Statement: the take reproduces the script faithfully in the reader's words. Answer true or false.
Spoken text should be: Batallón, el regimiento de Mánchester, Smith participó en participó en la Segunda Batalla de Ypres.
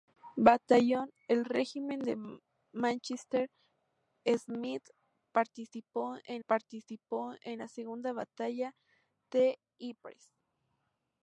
true